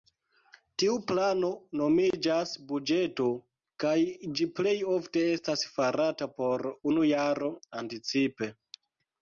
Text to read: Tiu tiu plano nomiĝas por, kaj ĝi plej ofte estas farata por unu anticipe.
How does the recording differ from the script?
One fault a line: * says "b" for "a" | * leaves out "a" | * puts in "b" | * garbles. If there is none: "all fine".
* leaves out "tiu"
* says "buĝeto" for "por"
* puts in "jaro"